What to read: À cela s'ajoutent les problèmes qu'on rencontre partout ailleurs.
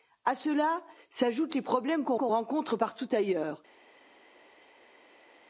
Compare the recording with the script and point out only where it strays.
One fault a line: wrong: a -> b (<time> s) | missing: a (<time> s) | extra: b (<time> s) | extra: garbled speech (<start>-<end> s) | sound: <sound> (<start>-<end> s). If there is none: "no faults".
extra: qu'on (2.2 s)